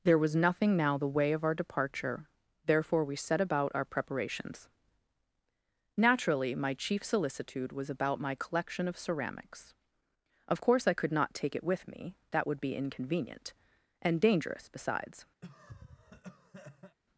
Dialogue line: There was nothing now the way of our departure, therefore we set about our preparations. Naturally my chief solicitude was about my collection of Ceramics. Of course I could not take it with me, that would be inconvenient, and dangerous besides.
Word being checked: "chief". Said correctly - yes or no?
yes